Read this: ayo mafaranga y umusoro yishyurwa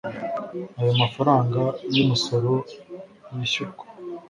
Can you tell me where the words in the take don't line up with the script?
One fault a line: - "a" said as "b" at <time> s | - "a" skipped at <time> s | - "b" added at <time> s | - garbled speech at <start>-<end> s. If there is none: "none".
none